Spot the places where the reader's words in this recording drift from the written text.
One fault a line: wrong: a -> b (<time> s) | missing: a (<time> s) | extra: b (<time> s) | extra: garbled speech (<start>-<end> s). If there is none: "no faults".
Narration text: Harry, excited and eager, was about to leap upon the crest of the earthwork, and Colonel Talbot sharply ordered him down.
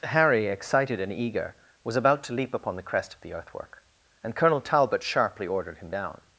no faults